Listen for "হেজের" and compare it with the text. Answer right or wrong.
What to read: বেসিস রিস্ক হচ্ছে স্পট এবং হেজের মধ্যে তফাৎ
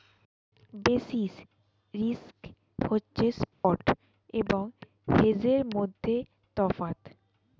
right